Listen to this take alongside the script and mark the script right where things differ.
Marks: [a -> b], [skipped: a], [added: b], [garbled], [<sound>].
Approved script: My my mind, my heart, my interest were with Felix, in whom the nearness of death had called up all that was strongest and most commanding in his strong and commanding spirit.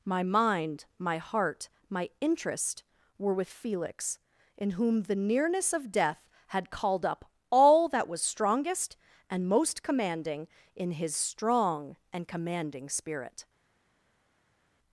My [skipped: my] mind, my heart, my interest were with Felix, in whom the nearness of death had called up all that was strongest and most commanding in his strong and commanding spirit.